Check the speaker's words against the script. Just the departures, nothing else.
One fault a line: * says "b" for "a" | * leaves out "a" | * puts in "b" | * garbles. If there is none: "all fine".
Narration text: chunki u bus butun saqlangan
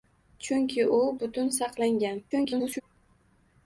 * leaves out "bus"
* garbles